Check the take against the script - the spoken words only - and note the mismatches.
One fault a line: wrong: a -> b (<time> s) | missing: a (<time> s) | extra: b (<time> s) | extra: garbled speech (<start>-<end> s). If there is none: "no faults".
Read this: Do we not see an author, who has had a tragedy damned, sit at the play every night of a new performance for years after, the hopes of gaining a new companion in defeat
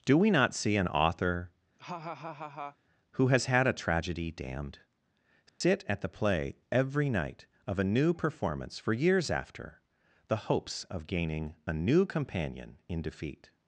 no faults